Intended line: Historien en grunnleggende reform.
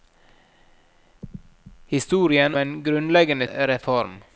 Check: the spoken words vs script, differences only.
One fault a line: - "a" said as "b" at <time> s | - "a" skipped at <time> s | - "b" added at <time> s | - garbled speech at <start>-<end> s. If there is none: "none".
none